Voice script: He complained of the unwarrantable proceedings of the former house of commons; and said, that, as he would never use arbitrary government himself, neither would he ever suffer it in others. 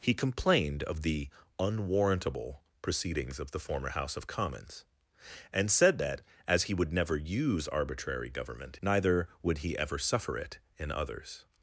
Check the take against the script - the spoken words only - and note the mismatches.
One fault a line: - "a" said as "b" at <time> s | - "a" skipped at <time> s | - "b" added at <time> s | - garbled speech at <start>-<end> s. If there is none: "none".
- "himself" skipped at 8.8 s